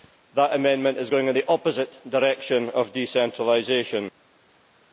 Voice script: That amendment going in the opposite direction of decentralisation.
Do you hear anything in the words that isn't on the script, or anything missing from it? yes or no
yes